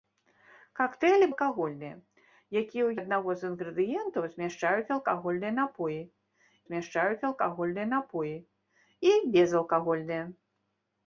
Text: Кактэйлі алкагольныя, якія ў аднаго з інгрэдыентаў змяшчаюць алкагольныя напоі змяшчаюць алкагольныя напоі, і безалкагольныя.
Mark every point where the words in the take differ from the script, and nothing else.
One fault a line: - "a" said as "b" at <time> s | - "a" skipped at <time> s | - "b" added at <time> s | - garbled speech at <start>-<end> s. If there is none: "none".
none